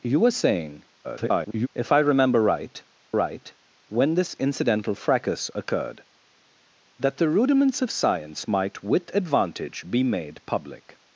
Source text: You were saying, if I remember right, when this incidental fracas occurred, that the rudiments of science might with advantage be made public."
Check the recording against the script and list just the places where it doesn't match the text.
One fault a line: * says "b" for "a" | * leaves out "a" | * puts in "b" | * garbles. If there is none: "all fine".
* garbles
* puts in "right"